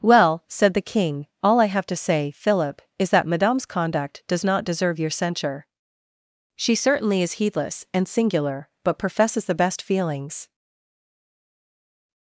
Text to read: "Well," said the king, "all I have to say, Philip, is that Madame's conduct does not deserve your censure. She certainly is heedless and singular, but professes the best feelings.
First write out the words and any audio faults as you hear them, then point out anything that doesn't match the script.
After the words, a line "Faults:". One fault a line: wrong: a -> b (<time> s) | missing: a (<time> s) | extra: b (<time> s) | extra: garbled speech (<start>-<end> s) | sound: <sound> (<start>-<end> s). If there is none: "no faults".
"Well," said the king, "all I have to say, Philip, is that Madame's conduct does not deserve your censure. She certainly is heedless and singular, but professes the best feelings.
Faults:
no faults